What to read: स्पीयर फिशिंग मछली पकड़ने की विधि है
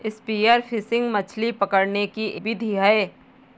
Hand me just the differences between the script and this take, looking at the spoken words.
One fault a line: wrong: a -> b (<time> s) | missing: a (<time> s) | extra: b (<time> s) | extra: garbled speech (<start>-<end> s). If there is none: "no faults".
no faults